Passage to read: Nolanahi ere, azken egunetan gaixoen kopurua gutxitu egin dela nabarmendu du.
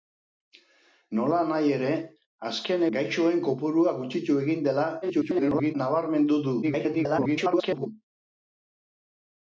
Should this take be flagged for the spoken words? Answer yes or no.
yes